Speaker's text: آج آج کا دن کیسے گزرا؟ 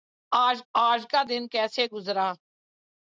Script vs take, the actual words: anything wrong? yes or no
no